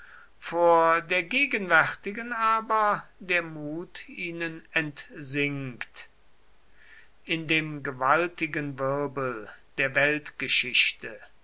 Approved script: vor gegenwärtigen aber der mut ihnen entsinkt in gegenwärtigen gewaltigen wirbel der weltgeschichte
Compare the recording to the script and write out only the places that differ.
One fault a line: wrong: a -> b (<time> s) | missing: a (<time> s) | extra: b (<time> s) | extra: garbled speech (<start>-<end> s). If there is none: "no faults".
extra: der (1.0 s)
wrong: gegenwärtigen -> dem (7.5 s)